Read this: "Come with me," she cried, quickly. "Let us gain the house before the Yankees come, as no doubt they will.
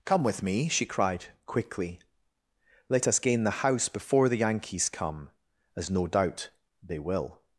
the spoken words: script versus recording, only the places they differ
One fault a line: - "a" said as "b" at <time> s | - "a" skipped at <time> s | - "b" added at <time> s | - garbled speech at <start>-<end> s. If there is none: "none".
none